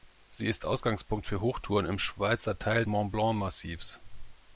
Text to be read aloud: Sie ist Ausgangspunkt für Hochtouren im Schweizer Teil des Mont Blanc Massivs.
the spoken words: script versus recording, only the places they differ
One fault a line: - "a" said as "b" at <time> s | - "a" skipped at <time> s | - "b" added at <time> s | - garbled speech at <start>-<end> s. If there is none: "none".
- "des" skipped at 2.9 s